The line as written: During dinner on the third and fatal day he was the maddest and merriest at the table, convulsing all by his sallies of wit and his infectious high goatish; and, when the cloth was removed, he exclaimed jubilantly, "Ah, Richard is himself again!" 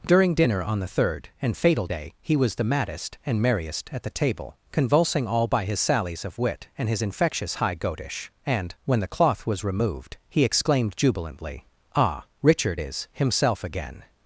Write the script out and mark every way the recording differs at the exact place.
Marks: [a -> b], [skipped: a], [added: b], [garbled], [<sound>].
During dinner on the third and fatal day he was the maddest and merriest at the table, convulsing all by his sallies of wit and his infectious high goatish; and, when the cloth was removed, he exclaimed jubilantly, "Ah, Richard is himself again!"